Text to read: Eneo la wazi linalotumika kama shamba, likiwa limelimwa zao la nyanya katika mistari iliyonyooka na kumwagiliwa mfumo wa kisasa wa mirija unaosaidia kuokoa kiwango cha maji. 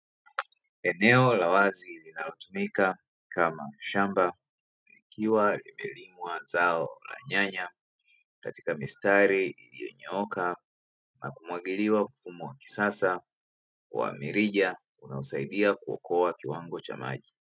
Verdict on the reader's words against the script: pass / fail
pass